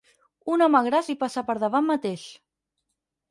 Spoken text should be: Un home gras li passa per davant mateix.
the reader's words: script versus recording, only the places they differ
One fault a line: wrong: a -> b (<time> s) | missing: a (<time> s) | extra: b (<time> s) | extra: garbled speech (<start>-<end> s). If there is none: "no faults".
no faults